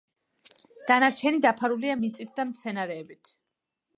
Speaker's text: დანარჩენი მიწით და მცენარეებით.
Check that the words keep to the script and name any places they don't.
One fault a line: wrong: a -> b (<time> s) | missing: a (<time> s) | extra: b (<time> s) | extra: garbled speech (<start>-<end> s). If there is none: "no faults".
extra: დაფარულია (1.5 s)